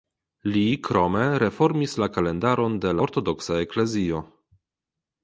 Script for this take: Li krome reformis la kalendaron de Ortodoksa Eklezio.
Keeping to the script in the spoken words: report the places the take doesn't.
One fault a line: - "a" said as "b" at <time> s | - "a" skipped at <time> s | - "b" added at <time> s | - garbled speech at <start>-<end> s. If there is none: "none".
none